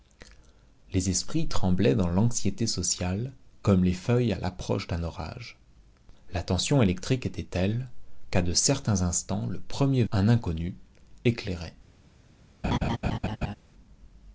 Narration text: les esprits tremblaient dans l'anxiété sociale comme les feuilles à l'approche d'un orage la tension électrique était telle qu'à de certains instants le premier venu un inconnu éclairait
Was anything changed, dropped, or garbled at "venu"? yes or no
yes